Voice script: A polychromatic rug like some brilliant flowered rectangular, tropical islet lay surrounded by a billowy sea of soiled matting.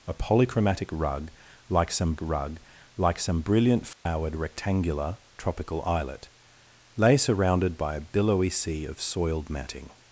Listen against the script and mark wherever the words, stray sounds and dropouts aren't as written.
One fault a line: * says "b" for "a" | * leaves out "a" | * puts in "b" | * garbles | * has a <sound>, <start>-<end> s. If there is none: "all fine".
* puts in "rug like some"
* has a dropout, 3.9-4.1 s